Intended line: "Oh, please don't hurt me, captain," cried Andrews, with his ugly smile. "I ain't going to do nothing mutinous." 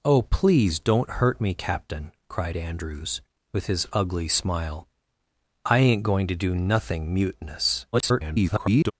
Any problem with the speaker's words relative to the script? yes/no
yes